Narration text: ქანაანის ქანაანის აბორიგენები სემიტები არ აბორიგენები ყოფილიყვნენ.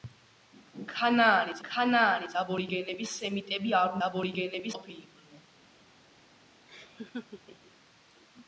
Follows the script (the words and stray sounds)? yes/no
no